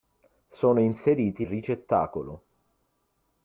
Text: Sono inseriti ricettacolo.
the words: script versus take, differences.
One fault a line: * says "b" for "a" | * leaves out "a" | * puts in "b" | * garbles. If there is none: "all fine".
all fine